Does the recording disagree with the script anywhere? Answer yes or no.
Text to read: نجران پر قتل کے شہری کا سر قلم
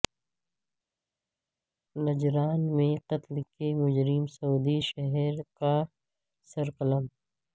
yes